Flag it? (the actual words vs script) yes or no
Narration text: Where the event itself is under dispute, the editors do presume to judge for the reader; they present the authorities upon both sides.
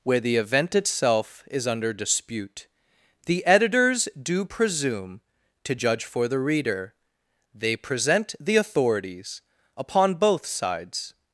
no